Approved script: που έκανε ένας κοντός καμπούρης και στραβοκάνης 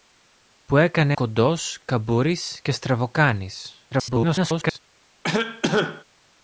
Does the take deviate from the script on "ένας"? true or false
true